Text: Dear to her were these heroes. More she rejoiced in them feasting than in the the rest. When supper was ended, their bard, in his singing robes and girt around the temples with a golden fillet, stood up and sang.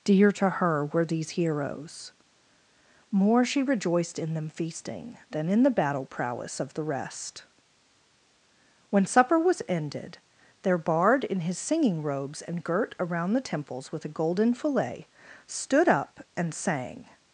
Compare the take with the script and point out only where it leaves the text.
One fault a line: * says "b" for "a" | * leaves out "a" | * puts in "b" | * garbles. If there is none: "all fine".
* puts in "battle prowess of"